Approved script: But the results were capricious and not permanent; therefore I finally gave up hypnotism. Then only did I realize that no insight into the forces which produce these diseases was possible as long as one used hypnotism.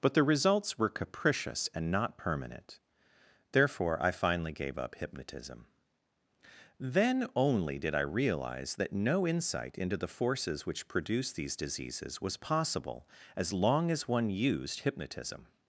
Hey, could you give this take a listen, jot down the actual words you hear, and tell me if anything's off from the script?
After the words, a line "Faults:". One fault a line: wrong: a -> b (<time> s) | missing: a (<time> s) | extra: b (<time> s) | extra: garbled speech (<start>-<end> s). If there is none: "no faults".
But the results were capricious and not permanent; therefore I finally gave up hypnotism. Then only did I realize that no insight into the forces which produce these diseases was possible as long as one used hypnotism.
Faults:
no faults